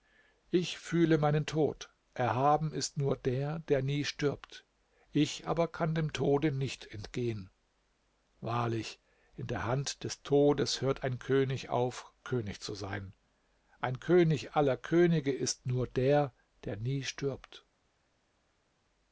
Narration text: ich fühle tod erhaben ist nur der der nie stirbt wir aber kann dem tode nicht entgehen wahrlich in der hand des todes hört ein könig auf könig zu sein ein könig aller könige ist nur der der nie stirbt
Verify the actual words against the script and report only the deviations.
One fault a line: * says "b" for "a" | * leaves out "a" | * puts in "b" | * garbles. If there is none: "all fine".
* puts in "meinen"
* says "ich" for "wir"